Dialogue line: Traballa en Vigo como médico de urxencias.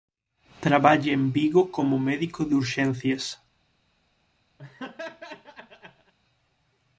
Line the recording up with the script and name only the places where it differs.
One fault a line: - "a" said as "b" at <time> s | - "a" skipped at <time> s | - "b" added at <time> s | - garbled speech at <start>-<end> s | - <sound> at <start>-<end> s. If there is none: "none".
- laugh at 4.6-6.1 s